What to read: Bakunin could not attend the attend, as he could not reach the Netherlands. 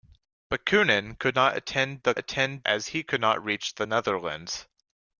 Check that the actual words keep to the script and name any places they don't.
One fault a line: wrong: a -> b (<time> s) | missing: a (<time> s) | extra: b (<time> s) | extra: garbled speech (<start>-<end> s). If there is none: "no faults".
no faults